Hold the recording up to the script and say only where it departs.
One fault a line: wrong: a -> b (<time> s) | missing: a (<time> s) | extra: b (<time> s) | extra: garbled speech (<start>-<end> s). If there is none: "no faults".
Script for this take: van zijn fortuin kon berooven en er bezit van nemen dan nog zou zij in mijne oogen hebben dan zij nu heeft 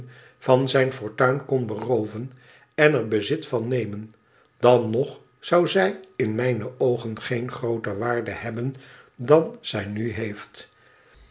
extra: geen grooter waarde (7.2 s)